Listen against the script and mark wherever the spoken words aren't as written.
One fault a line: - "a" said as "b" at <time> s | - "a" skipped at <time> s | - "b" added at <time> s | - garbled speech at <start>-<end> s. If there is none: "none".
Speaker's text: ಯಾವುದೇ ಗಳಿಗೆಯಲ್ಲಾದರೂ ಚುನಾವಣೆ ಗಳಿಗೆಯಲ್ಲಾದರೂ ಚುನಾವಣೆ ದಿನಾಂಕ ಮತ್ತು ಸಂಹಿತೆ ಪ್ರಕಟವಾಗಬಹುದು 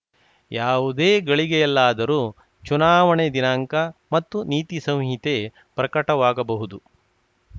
- "ಗಳಿಗೆಯಲ್ಲಾದರೂ ಚುನಾವಣೆ" skipped at 3.3 s
- "ನೀತಿ" added at 4.4 s